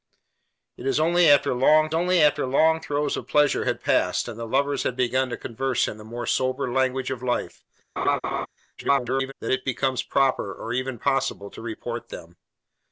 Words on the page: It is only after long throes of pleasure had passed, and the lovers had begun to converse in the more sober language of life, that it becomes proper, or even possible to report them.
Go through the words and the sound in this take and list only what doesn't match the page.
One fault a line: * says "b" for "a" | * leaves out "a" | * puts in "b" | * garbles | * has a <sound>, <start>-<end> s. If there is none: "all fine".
* puts in "only after long"
* has a laugh, 8.0-8.5 s
* garbles